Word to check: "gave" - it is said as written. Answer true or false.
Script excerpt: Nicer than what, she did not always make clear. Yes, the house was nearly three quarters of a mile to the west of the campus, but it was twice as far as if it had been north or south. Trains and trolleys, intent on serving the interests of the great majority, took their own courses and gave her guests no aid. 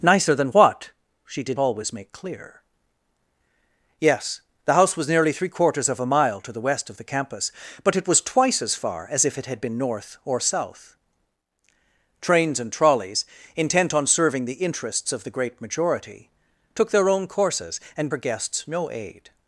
false